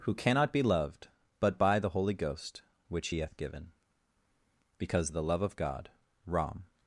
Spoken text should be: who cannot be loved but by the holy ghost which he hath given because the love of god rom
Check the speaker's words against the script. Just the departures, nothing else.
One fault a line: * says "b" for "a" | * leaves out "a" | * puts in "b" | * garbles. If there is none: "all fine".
all fine